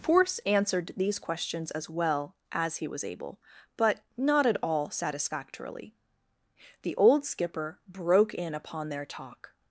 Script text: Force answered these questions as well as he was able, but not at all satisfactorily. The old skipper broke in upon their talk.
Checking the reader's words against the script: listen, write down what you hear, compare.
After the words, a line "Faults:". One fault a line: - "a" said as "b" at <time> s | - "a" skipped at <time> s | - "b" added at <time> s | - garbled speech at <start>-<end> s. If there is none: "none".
Force answered these questions as well as he was able, but not at all satisfactorily. The old skipper broke in upon their talk.
Faults:
none